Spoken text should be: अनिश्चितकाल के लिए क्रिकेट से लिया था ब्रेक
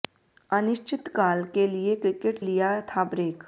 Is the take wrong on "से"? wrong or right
wrong